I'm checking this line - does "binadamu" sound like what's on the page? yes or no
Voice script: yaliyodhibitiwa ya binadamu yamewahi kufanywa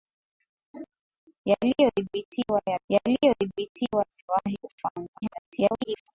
no